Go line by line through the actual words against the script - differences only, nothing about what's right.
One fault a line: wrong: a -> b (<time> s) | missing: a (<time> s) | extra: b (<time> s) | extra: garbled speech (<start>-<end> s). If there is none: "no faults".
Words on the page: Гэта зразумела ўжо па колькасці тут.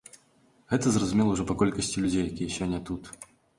extra: людзей якія сёння (2.1 s)